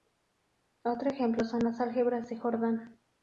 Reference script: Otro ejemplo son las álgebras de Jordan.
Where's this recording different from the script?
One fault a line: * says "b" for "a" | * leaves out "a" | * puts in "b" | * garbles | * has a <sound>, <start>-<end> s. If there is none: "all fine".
all fine